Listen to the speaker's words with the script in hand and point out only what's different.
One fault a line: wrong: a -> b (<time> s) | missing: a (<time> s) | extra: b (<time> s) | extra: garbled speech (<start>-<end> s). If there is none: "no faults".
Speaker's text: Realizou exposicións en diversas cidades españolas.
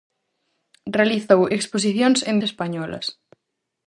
missing: diversas cidades (2.3 s)